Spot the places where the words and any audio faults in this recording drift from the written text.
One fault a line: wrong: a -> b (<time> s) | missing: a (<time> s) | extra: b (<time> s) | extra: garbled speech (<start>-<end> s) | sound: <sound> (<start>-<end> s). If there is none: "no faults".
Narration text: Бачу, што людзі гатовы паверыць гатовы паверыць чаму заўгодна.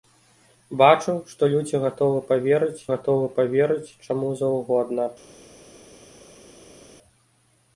no faults